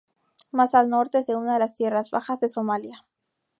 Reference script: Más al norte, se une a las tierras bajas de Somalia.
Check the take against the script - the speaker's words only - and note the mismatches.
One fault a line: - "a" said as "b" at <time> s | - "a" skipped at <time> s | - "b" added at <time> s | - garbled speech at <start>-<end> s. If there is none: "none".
none